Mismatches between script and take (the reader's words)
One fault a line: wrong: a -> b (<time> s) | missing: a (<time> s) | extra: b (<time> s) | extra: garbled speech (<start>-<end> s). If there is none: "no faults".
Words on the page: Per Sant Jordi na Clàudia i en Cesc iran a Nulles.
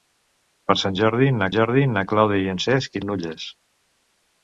extra: Jordi na (1.5 s)
missing: iran (3.0 s)